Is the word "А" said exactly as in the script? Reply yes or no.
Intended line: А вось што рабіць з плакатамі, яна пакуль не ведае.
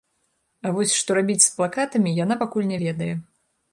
yes